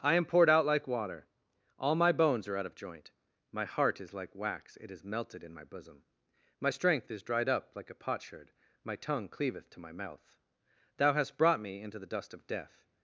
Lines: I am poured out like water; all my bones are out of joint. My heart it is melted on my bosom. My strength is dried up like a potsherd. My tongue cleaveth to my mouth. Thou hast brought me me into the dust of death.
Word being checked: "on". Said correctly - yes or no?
no